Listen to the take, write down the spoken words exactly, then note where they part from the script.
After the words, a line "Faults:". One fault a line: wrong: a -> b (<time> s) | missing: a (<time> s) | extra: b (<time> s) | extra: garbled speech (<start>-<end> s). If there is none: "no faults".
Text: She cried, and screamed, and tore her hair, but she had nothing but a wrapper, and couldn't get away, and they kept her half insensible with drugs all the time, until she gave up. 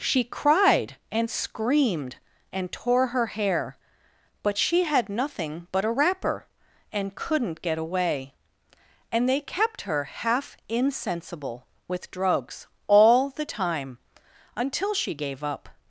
She cried, and screamed, and tore her hair, but she had nothing but a wrapper, and couldn't get away, and they kept her half insensible with drugs all the time, until she gave up.
Faults:
no faults